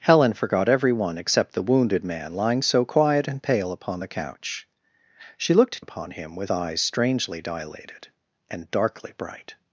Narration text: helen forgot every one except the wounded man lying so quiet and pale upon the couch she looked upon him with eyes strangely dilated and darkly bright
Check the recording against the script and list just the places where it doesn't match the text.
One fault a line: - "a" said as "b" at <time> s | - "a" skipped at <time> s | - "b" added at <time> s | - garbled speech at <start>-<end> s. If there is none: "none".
none